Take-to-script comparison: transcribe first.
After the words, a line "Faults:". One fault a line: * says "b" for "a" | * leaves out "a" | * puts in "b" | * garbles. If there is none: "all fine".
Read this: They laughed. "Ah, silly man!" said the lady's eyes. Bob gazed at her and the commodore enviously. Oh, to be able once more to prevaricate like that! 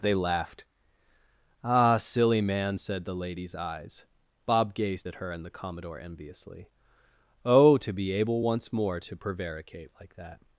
They laughed. "Ah, silly man!" said the lady's eyes. Bob gazed at her and the commodore enviously. Oh, to be able once more to prevaricate like that!
Faults:
all fine